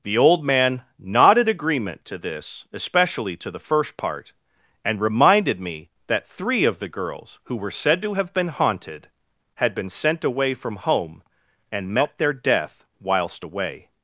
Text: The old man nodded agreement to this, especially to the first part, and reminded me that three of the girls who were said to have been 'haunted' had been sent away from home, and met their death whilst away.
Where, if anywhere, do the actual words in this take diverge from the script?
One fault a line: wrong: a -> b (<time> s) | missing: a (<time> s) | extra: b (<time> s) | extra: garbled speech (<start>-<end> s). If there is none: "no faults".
no faults